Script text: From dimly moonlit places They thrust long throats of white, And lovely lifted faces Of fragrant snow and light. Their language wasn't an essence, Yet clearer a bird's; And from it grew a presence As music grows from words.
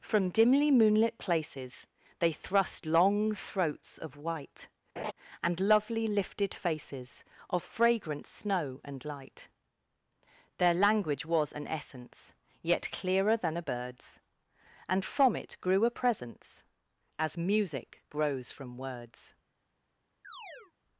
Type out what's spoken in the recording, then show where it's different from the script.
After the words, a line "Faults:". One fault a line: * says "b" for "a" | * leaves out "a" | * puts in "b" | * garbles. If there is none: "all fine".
From dimly moonlit places They thrust long throats of white, And lovely lifted faces Of fragrant snow and light. Their language was an essence, Yet clearer than a bird's; And from it grew a presence As music grows from words.
Faults:
* says "was" for "wasn't"
* puts in "than"